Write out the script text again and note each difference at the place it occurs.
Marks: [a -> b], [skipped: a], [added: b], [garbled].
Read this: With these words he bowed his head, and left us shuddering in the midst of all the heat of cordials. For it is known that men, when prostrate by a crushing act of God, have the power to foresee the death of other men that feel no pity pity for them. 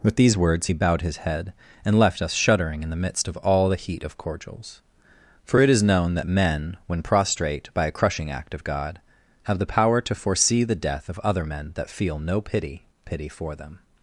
With these words he bowed his head, and left us shuddering in the midst of all the heat of cordials. For it is known that men, when prostrate by a crushing act of God, have the power to foresee the death of other men that feel no pity pity for them.